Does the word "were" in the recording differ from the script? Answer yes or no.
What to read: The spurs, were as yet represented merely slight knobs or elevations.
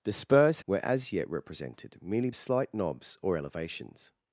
no